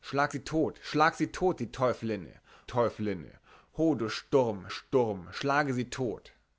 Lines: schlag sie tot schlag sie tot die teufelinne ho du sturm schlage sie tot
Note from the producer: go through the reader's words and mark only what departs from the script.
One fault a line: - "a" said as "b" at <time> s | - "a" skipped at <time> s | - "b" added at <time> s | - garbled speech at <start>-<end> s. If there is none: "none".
- "teufelinne" added at 2.7 s
- "sturm" added at 4.7 s